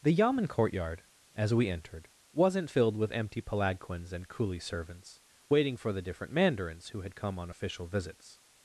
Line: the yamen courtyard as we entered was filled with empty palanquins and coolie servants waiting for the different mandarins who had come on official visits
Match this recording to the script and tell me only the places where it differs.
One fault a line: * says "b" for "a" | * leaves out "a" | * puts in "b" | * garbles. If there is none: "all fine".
* says "wasn't" for "was"